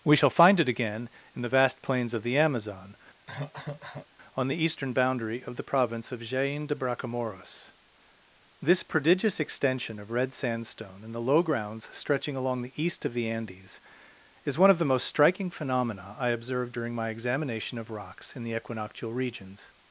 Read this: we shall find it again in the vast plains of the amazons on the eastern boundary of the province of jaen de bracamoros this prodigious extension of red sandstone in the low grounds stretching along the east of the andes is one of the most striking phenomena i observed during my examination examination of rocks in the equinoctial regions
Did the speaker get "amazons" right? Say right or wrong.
wrong